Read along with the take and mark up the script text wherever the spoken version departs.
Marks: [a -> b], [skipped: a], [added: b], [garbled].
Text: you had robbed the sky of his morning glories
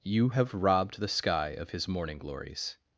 you [had -> have] robbed the sky of his morning glories